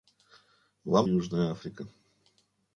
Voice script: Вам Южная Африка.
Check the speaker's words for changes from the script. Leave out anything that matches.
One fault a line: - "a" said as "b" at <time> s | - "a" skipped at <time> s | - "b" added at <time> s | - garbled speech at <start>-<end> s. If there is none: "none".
none